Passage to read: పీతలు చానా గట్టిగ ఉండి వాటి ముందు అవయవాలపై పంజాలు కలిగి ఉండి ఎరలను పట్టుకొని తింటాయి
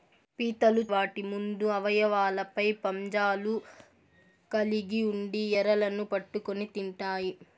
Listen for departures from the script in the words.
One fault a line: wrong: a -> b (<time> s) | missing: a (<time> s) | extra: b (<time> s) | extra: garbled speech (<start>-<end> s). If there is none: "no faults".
missing: చానా గట్టిగ ఉండి (0.8 s)